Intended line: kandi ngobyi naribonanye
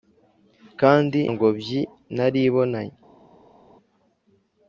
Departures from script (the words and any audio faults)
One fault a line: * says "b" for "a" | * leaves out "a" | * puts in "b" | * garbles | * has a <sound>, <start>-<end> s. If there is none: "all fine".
all fine